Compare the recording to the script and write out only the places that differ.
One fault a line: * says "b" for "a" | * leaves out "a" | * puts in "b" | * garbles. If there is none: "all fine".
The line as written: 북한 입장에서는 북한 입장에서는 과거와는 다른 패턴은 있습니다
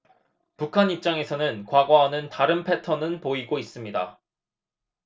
* leaves out "북한 입장에서는"
* puts in "보이고"